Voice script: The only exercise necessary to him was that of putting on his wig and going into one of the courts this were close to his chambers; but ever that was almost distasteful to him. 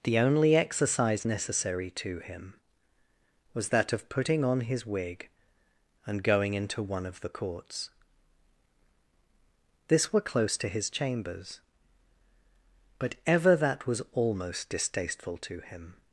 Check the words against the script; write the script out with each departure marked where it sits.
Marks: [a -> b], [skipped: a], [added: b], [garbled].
The only exercise necessary to him was that of putting on his wig and going into one of the courts this were close to his chambers; but ever that was almost distasteful to him.